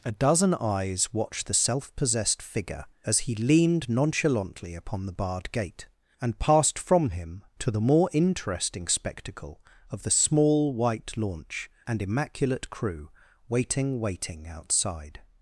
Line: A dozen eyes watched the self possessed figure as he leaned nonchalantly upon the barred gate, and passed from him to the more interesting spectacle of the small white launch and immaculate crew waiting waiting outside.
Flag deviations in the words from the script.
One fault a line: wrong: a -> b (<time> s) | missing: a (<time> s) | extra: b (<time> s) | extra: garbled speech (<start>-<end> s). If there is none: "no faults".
no faults